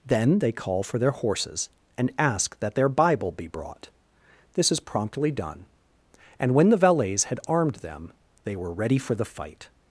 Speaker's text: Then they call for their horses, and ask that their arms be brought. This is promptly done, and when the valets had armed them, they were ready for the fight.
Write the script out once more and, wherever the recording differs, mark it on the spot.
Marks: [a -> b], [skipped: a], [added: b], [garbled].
Then they call for their horses, and ask that their [arms -> bible] be brought. This is promptly done, and when the valets had armed them, they were ready for the fight.